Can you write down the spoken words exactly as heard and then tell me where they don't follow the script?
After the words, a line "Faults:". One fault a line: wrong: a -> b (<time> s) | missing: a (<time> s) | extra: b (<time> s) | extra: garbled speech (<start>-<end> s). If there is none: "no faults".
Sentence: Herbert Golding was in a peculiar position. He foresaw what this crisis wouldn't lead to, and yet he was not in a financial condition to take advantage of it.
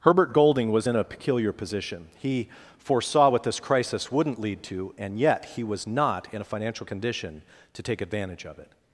Herbert Golding was in a peculiar position. He foresaw what this crisis wouldn't lead to, and yet he was not in a financial condition to take advantage of it.
Faults:
no faults